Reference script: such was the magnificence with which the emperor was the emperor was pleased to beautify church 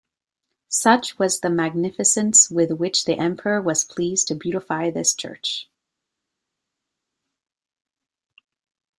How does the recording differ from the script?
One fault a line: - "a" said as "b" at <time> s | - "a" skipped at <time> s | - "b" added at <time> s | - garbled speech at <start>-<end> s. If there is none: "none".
- "the emperor was" skipped at 3.8 s
- "this" added at 4.9 s